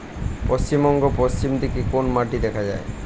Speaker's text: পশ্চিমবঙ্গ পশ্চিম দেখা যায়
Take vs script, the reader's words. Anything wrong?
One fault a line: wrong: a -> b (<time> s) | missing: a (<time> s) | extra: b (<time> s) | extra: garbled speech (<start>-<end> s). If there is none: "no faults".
extra: দিকে কোন মাটি (1.6 s)